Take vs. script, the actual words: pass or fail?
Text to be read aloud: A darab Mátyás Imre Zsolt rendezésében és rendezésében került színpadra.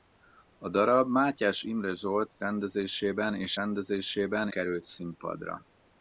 pass